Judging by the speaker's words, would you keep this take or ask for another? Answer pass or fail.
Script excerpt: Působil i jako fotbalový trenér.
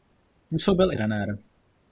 fail